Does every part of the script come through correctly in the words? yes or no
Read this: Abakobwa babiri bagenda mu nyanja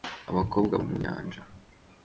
no